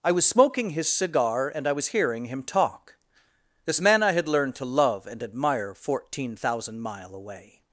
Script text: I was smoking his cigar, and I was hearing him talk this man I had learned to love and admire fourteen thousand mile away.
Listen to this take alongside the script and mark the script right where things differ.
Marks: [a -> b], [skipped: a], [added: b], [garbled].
I was smoking his cigar, and I was hearing him talk this man I had learned to love and admire fourteen thousand mile away.